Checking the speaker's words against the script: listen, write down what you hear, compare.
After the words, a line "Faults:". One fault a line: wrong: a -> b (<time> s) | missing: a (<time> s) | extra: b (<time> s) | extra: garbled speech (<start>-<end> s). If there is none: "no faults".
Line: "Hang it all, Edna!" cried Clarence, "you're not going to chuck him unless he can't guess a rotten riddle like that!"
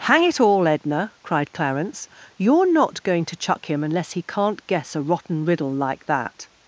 "Hang it all, Edna!" cried Clarence, "you're not going to chuck him unless he can't guess a rotten riddle like that!"
Faults:
no faults